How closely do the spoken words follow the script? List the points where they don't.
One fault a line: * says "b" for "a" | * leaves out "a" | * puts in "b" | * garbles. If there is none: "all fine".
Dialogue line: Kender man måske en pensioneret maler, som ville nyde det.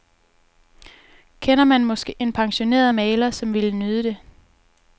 all fine